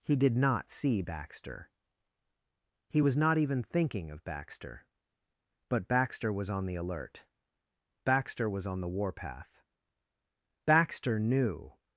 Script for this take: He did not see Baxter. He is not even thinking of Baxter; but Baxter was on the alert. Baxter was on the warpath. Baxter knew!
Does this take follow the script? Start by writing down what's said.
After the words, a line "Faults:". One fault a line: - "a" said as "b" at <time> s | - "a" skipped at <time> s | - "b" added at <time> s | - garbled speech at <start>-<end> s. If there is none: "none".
He did not see Baxter. He was not even thinking of Baxter; but Baxter was on the alert. Baxter was on the warpath. Baxter knew!
Faults:
- "is" said as "was" at 3.0 s